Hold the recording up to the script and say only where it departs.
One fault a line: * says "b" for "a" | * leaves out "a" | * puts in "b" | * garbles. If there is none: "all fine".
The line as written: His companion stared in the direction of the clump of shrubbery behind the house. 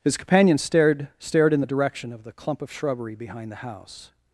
* puts in "stared"